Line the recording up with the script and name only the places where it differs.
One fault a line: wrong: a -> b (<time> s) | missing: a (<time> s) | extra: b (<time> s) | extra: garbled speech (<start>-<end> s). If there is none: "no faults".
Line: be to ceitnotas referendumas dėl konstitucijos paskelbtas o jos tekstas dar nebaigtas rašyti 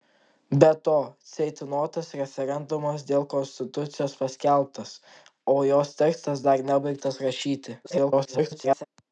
extra: garbled speech (7.8-8.8 s)